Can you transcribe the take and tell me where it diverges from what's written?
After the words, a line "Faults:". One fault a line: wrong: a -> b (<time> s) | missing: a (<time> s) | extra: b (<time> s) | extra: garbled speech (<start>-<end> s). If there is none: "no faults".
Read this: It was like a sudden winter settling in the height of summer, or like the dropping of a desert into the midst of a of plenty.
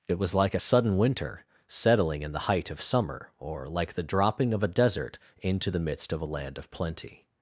It was like a sudden winter settling in the height of summer, or like the dropping of a desert into the midst of a land of plenty.
Faults:
extra: land (6.3 s)